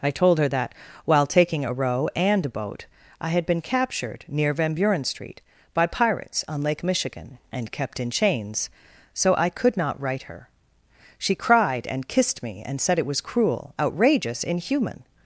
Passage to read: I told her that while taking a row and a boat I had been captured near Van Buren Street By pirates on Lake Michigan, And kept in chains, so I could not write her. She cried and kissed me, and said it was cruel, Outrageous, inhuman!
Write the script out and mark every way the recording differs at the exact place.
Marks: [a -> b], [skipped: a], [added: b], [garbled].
I told her that while taking a row and a boat I had been captured near Van Buren Street By pirates on Lake Michigan, And kept in chains, so I could not write her. She cried and kissed me, and said it was cruel, Outrageous, inhuman!